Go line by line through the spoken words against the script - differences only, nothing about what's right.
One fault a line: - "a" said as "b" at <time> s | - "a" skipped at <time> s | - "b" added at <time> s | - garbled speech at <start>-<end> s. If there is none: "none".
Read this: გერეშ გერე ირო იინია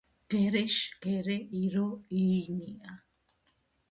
none